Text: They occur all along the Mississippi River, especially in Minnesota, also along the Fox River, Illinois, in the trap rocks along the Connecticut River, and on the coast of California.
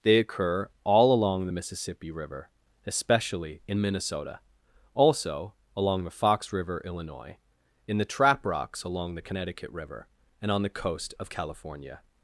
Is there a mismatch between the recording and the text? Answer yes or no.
no